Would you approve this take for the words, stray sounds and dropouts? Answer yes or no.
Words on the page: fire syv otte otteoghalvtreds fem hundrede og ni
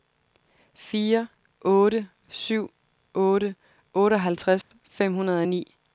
no